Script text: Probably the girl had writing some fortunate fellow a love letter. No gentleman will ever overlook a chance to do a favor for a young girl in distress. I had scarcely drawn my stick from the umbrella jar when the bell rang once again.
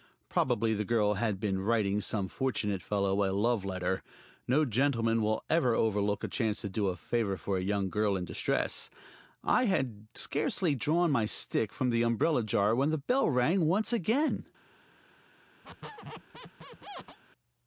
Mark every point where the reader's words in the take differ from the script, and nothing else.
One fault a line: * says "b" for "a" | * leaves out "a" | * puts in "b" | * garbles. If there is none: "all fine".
* puts in "been"